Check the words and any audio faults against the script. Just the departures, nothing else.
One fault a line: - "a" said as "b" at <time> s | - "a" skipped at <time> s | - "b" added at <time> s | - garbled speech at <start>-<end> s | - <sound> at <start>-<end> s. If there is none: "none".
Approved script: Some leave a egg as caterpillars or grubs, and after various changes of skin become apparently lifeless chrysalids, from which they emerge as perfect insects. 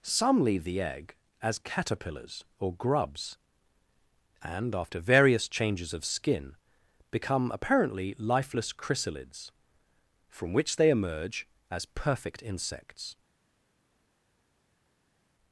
- "a" said as "the" at 0.6 s